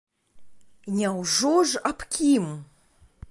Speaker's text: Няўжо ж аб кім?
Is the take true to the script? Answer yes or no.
yes